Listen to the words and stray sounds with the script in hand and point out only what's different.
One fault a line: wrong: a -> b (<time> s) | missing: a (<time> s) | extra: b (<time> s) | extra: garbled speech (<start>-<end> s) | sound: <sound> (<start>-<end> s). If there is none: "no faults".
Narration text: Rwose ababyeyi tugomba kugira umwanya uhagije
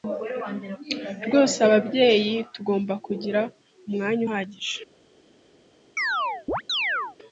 sound: chirp (6.0-7.2 s)